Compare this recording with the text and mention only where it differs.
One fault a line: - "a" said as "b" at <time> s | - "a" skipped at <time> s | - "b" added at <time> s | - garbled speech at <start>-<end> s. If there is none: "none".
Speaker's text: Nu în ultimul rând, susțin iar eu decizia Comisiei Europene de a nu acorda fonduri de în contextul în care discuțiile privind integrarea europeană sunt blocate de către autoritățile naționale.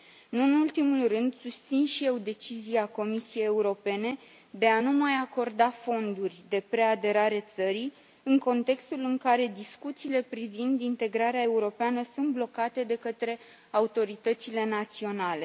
- "iar" said as "și" at 1.9 s
- "mai" added at 4.9 s
- "preaderare țării" added at 6.7 s